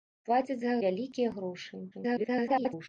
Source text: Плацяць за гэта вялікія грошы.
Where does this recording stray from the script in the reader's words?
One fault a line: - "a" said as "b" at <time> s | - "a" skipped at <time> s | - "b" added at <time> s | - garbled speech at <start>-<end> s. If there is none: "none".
- "гэта" skipped at 0.8 s
- garbled speech at 1.9-2.9 s